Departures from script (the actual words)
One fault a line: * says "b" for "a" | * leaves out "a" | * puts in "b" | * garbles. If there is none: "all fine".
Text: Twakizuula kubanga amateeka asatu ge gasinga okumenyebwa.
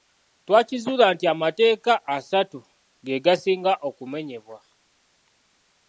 * says "nti" for "kubanga"